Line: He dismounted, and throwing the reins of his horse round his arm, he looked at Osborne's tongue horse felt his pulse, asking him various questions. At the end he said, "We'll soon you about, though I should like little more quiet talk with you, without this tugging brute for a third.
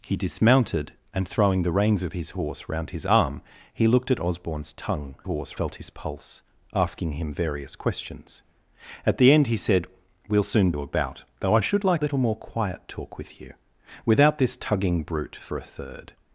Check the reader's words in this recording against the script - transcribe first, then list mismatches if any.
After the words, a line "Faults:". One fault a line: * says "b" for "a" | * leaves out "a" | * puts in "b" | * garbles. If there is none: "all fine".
He dismounted, and throwing the reins of his horse round his arm, he looked at Osborne's tongue horse felt his pulse, asking him various questions. At the end he said, "We'll soon you about, though I should like little more quiet talk with you, without this tugging brute for a third.
Faults:
all fine